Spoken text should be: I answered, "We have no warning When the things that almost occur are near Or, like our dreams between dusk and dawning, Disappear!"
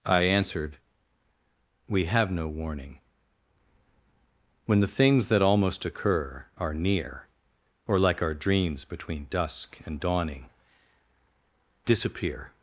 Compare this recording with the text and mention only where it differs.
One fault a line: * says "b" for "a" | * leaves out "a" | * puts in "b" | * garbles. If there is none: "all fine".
all fine